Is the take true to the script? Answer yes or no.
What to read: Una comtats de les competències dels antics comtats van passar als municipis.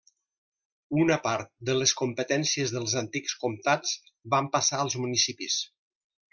no